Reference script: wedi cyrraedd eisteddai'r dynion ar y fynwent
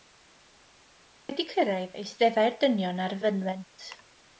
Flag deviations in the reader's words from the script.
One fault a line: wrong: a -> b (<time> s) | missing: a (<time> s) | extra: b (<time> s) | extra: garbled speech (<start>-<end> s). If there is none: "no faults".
no faults